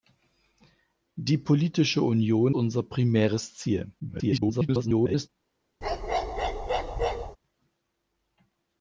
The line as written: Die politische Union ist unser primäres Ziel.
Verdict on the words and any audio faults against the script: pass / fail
fail